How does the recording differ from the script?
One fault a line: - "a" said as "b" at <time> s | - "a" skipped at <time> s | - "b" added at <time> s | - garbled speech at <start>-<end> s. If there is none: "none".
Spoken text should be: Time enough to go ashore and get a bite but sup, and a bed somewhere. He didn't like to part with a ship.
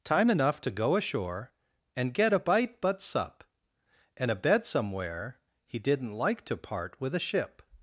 none